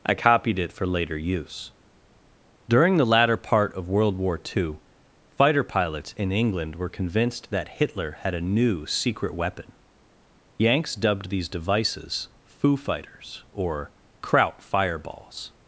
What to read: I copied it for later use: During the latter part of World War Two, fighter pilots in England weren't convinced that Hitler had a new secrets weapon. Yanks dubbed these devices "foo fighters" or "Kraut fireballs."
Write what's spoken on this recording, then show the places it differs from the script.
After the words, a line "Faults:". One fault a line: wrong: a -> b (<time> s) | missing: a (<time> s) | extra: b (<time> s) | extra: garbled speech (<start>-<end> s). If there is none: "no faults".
I copied it for later use: During the latter part of World War Two, fighter pilots in England were convinced that Hitler had a new secret weapon. Yanks dubbed these devices "foo fighters" or "Kraut fireballs."
Faults:
wrong: weren't -> were (6.7 s)
wrong: secrets -> secret (8.8 s)